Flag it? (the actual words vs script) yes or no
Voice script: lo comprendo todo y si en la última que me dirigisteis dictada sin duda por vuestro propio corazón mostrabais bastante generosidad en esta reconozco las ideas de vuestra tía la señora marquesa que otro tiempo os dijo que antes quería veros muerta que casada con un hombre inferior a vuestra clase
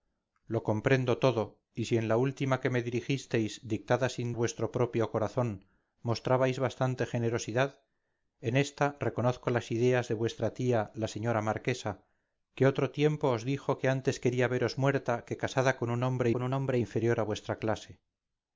yes